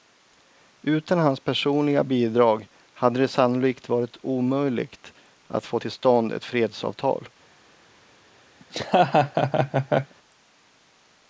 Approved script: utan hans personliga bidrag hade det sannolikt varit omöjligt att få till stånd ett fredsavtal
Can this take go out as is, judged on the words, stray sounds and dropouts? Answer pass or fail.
fail